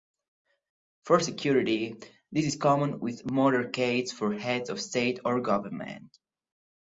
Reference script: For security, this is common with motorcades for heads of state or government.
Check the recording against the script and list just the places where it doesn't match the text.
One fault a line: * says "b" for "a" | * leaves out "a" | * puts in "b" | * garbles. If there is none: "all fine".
all fine